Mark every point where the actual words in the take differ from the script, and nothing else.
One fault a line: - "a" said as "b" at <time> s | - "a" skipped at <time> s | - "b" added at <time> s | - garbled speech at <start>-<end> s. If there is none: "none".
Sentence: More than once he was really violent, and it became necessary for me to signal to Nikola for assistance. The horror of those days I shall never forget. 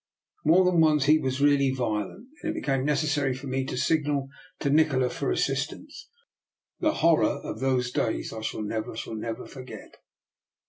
- "shall never" added at 8.9 s